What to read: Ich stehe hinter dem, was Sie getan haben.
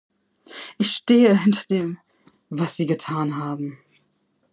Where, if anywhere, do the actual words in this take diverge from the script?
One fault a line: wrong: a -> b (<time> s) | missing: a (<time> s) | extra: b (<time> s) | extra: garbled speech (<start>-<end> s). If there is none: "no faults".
no faults